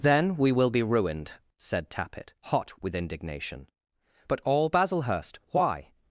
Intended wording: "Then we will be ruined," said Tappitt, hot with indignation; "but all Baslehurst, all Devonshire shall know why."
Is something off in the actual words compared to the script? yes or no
yes